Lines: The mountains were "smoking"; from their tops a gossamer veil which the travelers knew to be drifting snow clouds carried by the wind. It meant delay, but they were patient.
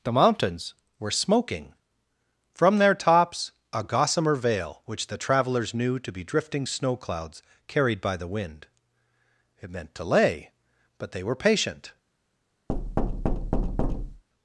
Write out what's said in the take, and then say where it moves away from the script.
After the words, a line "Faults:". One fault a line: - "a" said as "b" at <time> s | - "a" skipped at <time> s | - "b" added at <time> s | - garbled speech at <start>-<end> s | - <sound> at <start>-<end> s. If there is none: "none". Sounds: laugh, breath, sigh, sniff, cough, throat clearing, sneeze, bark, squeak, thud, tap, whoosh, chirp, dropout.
The mountains were "smoking"; from their tops a gossamer veil which the travelers knew to be drifting snow clouds carried by the wind. It meant delay, but they were patient.
Faults:
- thud at 12.7-14.2 s